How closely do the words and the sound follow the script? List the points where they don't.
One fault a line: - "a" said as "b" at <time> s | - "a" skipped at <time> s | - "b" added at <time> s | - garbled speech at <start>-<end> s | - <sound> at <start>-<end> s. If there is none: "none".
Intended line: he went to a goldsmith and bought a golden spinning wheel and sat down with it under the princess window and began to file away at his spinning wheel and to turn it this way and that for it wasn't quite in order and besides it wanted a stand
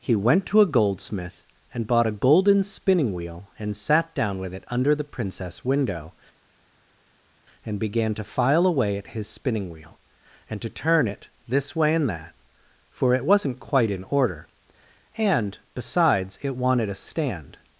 none